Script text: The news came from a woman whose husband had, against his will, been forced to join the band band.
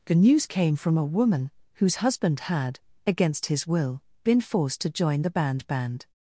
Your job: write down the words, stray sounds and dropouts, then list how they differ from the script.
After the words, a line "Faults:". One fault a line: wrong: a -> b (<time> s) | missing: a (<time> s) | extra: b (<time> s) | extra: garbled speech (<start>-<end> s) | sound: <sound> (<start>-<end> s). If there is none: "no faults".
The news came from a woman whose husband had, against his will, been forced to join the band band.
Faults:
no faults